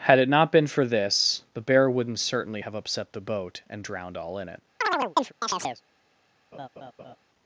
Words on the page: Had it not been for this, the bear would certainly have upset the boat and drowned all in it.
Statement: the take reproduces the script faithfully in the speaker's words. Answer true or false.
false